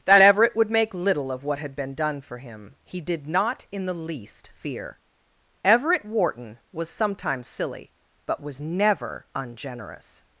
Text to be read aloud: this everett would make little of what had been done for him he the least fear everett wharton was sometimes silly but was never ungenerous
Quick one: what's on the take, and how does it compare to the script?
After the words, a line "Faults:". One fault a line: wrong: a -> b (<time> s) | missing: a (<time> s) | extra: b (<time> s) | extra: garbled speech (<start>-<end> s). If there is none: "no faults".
that everett would make little of what had been done for him he did not in the least fear everett wharton was sometimes silly but was never ungenerous
Faults:
wrong: this -> that (0.1 s)
extra: did not in (3.0 s)